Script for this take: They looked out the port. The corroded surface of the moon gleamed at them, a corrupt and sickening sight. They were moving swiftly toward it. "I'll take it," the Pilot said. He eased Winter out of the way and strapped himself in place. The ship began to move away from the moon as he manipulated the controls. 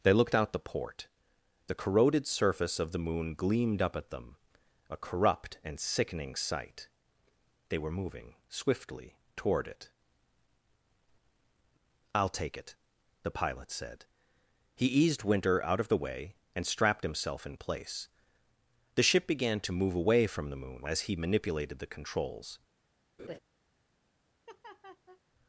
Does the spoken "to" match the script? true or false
true